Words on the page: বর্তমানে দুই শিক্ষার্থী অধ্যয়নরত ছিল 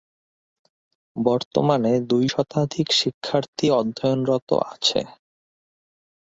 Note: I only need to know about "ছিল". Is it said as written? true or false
false